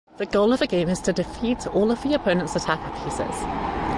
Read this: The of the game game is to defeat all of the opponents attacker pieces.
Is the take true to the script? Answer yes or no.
no